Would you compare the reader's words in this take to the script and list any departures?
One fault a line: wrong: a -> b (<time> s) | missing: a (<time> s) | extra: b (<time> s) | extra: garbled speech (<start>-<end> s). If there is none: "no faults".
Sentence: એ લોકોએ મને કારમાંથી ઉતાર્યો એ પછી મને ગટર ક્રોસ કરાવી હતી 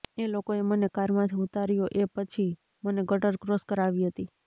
no faults